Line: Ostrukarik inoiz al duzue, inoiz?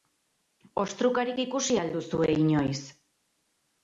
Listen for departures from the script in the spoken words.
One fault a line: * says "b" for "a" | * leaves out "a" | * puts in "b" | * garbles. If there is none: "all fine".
* says "ikusi" for "inoiz"